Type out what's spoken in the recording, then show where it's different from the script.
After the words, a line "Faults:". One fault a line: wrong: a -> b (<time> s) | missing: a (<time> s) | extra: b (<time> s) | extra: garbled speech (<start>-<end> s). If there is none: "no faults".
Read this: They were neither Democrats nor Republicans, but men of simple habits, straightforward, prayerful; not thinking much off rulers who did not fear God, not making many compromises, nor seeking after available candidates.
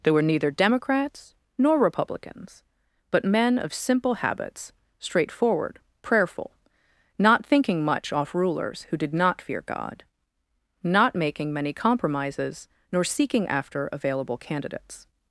They were neither Democrats nor Republicans, but men of simple habits, straightforward, prayerful; not thinking much off rulers who did not fear God, not making many compromises, nor seeking after available candidates.
Faults:
no faults